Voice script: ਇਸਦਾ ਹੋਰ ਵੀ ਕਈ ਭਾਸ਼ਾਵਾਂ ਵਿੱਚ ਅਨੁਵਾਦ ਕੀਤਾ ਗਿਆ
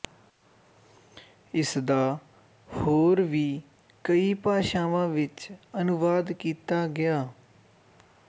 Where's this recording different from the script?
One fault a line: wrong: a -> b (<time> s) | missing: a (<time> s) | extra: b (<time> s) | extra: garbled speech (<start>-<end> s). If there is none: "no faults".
no faults